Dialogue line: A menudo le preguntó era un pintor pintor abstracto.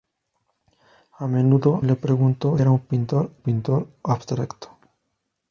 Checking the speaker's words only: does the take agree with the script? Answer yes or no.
yes